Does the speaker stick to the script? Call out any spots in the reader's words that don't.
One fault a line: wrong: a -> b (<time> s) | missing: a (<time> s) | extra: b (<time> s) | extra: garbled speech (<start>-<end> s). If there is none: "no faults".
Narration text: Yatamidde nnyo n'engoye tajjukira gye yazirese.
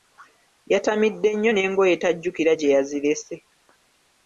no faults